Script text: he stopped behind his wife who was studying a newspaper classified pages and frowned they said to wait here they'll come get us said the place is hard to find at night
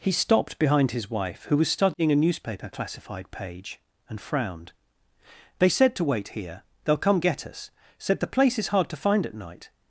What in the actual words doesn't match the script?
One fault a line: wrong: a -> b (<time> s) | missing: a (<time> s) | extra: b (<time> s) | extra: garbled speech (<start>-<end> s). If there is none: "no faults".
wrong: pages -> page (3.3 s)